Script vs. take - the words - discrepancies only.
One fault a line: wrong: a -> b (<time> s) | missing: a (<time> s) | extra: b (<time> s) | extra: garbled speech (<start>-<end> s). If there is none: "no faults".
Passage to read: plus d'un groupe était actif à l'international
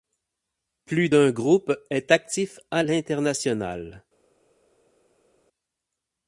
wrong: était -> est (1.9 s)